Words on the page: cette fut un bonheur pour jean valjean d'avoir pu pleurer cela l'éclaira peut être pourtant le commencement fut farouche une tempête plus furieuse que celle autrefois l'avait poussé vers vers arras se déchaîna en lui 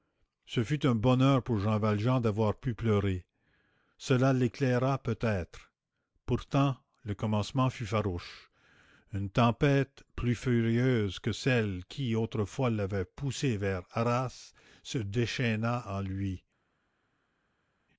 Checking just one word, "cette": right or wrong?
wrong